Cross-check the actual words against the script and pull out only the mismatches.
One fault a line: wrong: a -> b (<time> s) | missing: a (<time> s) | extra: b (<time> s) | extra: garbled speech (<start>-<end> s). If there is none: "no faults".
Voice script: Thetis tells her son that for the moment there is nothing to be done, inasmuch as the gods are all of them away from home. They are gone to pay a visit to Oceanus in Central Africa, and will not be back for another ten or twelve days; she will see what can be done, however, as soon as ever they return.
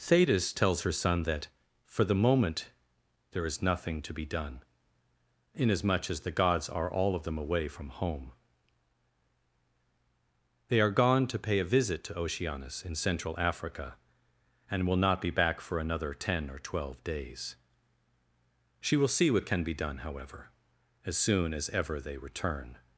no faults